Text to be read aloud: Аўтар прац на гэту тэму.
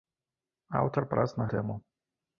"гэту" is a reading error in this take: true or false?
true